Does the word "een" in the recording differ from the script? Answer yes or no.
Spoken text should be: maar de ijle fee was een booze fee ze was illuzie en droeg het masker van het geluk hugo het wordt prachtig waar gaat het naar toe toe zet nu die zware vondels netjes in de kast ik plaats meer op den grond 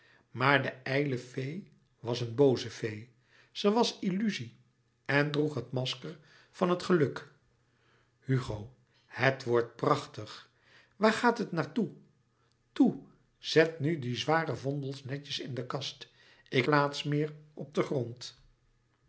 no